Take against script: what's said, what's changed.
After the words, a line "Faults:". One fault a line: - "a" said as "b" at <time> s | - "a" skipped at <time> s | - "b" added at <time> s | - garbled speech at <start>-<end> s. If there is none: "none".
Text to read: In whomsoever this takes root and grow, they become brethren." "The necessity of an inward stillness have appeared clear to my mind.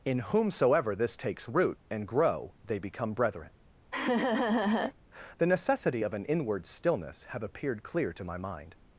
In whomsoever this takes root and grow, they become brethren." "The necessity of an inward stillness have appeared clear to my mind.
Faults:
none